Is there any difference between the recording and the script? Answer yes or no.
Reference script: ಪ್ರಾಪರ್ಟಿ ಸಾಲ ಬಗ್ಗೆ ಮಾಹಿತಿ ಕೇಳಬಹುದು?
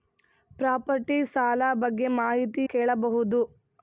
no